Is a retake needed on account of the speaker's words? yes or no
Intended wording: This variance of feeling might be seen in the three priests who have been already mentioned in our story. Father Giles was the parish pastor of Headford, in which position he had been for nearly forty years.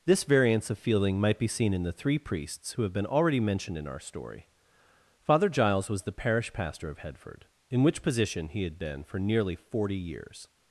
no